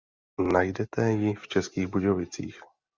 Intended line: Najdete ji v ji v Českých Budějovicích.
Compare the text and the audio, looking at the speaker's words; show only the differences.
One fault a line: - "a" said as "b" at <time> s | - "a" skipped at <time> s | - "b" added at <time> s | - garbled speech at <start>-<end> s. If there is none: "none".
- "ji v" skipped at 1.5 s